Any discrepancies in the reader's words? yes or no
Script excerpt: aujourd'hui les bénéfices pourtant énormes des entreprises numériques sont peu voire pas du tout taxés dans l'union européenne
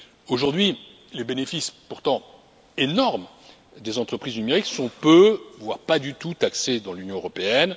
no